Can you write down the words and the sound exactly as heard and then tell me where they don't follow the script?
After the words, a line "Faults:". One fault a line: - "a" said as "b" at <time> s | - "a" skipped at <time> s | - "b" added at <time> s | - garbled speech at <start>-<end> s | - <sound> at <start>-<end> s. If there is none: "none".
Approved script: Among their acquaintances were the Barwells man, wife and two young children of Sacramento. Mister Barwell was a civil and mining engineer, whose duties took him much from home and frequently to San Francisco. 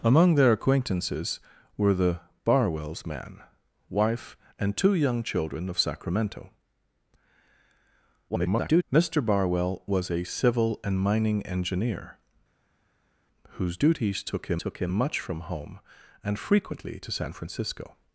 Among their acquaintances were the Barwells man, wife and two young children of Sacramento. [garbled] Mister Barwell was a civil and mining engineer, whose duties took him took him much from home and frequently to San Francisco.
Faults:
- garbled speech at 8.3-8.8 s
- "took him" added at 14.6 s